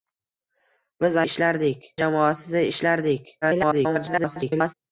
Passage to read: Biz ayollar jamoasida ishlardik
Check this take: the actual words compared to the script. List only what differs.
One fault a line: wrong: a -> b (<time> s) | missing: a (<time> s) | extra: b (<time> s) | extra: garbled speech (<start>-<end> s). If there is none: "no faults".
wrong: ayollar -> ishlardik (1.3 s)
extra: garbled speech (3.4-4.7 s)